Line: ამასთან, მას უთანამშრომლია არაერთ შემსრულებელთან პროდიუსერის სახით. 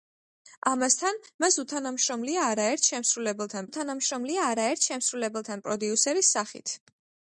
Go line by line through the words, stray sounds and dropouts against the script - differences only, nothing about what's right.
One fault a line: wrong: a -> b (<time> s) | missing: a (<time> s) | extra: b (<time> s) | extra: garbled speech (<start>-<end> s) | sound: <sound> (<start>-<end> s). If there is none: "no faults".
extra: უთანამშრომლია არაერთ შემსრულებელთან (3.7 s)